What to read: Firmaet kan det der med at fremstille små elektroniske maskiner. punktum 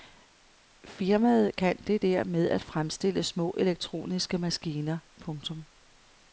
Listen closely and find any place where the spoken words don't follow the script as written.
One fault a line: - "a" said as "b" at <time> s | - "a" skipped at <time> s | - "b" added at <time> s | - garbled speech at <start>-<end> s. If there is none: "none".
none